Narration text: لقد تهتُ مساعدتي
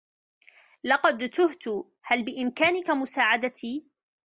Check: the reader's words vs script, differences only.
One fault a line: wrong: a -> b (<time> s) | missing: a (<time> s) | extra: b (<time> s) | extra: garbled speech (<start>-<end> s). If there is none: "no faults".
extra: هل بإمكانك (2.0 s)